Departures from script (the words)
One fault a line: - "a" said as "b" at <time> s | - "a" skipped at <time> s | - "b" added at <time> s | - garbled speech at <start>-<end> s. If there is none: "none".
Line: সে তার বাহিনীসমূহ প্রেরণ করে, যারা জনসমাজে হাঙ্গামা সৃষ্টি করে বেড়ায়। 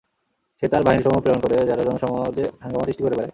none